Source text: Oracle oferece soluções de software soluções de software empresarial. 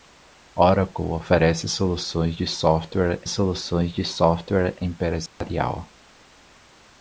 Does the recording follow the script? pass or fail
pass